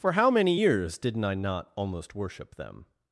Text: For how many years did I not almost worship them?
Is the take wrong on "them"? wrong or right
right